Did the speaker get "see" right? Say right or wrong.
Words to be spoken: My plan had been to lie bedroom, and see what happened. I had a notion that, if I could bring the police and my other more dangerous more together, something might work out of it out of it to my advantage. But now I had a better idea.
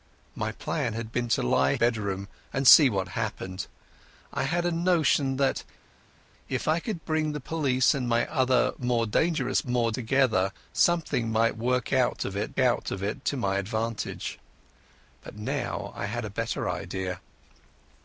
right